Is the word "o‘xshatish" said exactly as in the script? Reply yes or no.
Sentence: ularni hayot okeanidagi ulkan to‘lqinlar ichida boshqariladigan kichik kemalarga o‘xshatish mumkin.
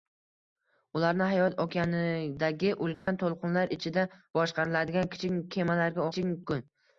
no